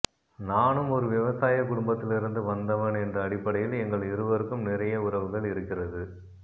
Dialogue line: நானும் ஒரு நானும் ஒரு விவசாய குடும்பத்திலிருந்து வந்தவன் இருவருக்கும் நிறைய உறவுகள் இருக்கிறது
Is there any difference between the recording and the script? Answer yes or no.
yes